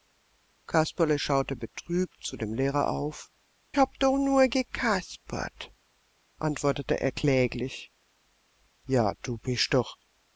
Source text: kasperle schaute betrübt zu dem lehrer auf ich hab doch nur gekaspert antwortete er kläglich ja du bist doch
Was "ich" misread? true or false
true